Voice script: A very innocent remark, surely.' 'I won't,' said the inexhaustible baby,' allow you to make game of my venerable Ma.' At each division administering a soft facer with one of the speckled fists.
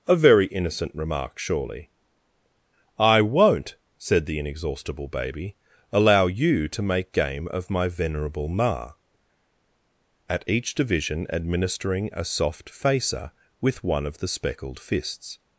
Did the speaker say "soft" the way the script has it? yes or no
yes